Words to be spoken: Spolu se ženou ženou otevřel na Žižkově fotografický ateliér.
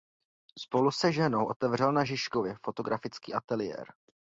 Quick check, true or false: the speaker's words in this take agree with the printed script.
false